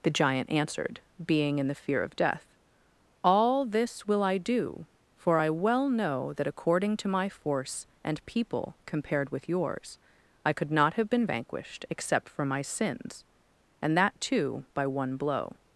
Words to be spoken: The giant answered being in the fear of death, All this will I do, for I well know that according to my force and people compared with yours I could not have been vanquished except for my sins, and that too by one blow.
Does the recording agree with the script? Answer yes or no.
yes